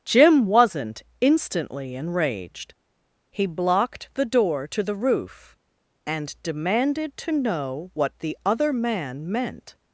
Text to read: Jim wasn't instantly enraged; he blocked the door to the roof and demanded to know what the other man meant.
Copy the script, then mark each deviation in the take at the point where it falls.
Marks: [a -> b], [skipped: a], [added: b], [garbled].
Jim wasn't instantly enraged; he blocked the door to the roof and demanded to know what the other man meant.